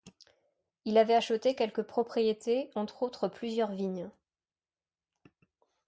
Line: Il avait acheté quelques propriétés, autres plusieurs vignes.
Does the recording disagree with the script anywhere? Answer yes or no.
yes